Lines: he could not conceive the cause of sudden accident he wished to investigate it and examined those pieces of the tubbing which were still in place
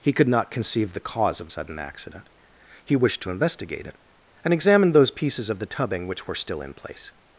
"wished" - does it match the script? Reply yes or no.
yes